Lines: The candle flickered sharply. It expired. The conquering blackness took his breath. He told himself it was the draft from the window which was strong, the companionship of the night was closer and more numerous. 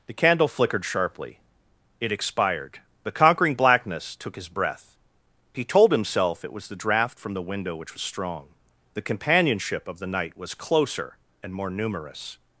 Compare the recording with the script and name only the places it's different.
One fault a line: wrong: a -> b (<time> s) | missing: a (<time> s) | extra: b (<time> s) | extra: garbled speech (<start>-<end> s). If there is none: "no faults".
no faults